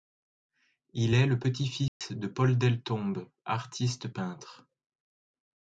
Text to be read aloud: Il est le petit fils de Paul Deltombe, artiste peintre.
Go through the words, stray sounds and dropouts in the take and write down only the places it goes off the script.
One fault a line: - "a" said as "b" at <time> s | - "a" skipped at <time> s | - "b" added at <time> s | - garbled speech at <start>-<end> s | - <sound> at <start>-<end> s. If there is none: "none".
- dropout at 1.9-2.0 s